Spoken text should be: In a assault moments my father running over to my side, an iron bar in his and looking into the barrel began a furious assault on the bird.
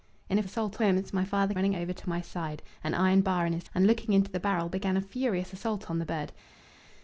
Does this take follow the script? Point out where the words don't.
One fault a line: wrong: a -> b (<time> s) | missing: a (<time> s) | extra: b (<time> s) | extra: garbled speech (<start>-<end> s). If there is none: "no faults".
no faults